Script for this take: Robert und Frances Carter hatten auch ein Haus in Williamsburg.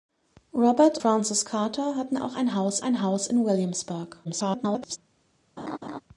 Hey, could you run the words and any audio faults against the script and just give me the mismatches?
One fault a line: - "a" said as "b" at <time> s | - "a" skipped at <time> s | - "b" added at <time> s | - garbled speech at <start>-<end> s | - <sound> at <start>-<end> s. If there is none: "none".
- "und" skipped at 1.0 s
- "ein Haus" added at 2.8 s
- garbled speech at 4.2-5.0 s
- laugh at 5.6-6.0 s